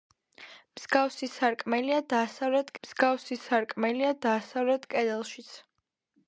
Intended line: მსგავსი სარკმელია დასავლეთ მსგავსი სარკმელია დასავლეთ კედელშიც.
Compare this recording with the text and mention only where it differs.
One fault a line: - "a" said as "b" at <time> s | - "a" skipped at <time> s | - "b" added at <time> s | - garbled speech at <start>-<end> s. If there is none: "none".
none